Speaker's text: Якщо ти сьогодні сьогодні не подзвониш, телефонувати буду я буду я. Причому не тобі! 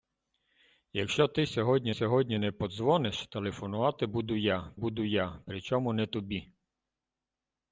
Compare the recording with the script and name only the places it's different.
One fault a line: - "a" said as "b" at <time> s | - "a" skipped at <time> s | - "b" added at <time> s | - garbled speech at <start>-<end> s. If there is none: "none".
none